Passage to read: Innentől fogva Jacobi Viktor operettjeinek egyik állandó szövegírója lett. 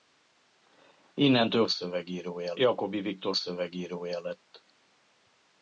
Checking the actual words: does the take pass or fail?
fail